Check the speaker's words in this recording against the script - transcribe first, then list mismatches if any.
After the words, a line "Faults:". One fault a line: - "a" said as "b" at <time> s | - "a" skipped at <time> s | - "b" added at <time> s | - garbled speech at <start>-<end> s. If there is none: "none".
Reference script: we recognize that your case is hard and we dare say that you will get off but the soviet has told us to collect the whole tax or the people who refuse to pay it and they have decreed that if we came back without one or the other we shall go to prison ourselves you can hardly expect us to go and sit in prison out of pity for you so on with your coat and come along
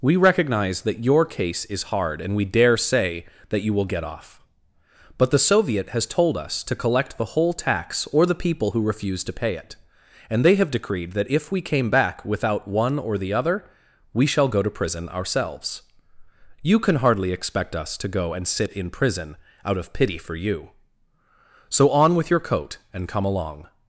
we recognize that your case is hard and we dare say that you will get off but the soviet has told us to collect the whole tax or the people who refuse to pay it and they have decreed that if we came back without one or the other we shall go to prison ourselves you can hardly expect us to go and sit in prison out of pity for you so on with your coat and come along
Faults:
none